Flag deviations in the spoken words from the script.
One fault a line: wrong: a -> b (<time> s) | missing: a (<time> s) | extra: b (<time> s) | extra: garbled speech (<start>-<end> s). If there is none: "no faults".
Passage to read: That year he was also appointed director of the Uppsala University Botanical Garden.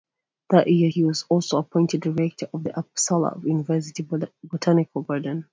no faults